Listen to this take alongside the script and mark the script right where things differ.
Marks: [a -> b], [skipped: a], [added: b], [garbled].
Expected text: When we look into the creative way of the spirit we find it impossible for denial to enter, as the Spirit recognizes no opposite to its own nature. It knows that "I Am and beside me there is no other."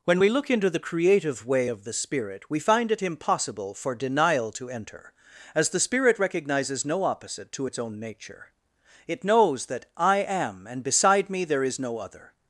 When we look into the creative way of the spirit we find it impossible for denial to enter, as the Spirit recognizes no opposite to its own nature. It knows that "I Am and beside me there is no other."